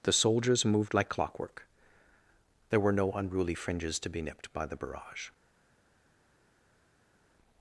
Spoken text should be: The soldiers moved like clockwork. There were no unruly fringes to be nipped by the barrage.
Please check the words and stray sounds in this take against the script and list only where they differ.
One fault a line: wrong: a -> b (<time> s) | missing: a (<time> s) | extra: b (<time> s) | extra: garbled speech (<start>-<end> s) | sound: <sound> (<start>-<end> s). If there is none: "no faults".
no faults